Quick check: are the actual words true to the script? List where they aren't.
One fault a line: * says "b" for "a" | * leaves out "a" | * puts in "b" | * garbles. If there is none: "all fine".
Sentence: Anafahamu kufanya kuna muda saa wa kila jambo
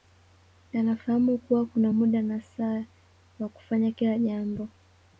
* says "kuwa" for "kufanya"
* puts in "na"
* puts in "kufanya"